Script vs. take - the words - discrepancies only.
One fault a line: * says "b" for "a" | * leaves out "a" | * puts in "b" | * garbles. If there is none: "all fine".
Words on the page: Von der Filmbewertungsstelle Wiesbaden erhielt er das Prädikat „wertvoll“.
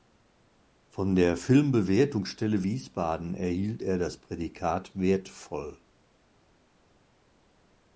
all fine